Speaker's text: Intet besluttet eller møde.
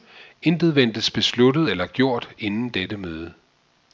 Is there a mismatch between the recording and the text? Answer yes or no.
yes